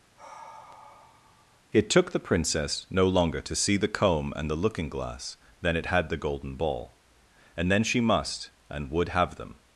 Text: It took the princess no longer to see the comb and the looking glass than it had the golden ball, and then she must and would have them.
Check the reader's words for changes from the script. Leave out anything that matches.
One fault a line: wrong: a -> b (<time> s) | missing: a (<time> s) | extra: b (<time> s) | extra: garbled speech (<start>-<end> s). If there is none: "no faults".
no faults